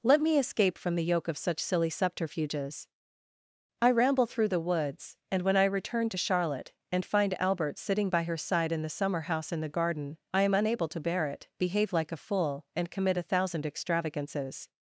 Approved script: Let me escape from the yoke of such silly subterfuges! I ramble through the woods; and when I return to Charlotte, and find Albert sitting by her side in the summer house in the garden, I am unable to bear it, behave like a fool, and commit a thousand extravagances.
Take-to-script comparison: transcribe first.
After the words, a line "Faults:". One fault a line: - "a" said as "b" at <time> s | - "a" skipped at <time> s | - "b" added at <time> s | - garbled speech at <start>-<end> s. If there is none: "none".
Let me escape from the yoke of such silly subterfuges! I ramble through the woods; and when I return to Charlotte, and find Albert sitting by her side in the summer house in the garden, I am unable to bear it, behave like a fool, and commit a thousand extravagances.
Faults:
none